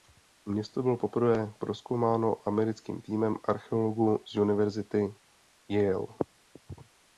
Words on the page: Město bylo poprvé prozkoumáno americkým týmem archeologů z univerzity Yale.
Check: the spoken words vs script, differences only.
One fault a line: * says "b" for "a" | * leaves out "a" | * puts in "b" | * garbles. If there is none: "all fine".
all fine